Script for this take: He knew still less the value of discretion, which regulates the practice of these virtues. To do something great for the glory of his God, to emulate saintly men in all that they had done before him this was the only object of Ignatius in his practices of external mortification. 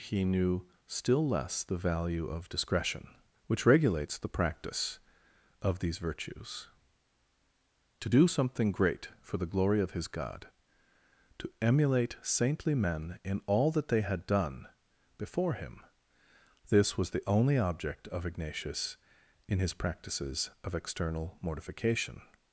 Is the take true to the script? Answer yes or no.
yes